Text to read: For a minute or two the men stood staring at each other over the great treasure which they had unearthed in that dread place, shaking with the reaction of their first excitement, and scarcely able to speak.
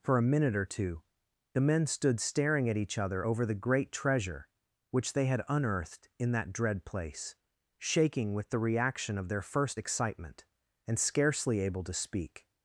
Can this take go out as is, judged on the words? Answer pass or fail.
pass